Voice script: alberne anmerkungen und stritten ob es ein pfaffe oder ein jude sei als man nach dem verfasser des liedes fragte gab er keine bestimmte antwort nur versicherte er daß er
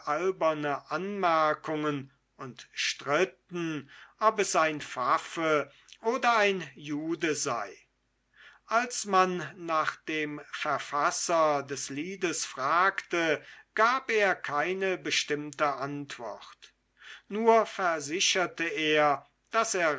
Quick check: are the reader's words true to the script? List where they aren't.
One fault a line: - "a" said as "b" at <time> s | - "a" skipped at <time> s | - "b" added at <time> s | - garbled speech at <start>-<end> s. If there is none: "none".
none